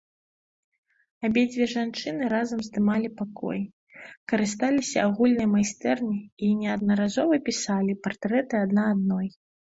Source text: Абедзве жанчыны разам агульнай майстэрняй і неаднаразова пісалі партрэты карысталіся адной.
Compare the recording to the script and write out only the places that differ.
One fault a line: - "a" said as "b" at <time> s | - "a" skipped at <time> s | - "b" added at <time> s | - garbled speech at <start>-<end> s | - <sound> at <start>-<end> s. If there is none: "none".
- "здымалі пакой карысталіся" added at 2.7 s
- "карысталіся" said as "адна" at 8.7 s